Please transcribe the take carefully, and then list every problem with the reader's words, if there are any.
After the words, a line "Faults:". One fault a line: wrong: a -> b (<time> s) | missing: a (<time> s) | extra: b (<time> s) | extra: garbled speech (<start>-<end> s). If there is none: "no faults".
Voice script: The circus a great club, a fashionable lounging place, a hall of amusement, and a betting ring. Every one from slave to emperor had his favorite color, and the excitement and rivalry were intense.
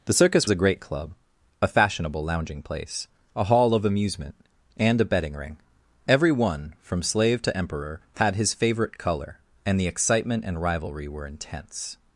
The circus a great club, a fashionable lounging place, a hall of amusement, and a betting ring. Every one from slave to emperor had his favorite color, and the excitement and rivalry were intense.
Faults:
no faults